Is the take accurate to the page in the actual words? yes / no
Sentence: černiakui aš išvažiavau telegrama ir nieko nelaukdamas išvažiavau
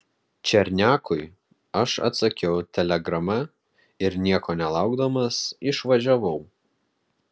no